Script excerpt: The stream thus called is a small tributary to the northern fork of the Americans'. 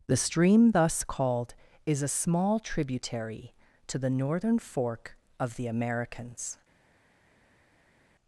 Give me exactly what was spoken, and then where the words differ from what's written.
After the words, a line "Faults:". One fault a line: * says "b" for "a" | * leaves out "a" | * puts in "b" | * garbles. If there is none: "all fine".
The stream thus called is a small tributary to the northern fork of the Americans'.
Faults:
all fine